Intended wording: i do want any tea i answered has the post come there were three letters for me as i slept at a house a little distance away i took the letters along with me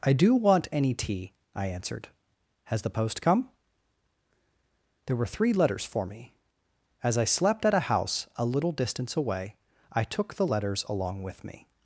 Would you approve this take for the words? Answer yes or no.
yes